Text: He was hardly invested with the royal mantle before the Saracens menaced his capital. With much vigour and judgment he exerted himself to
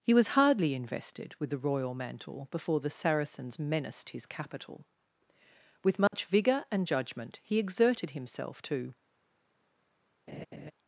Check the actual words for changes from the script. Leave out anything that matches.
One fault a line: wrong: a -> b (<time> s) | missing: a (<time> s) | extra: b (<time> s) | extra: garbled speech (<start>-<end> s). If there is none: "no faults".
no faults